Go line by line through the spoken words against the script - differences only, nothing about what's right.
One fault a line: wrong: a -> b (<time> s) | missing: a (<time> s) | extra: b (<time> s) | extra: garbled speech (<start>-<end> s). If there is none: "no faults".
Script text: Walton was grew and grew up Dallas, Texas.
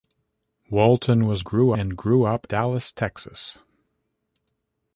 no faults